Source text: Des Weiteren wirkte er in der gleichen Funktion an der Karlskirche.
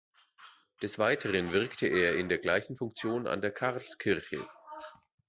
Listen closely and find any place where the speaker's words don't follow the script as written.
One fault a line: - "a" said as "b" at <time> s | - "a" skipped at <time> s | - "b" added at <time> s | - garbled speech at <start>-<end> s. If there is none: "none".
none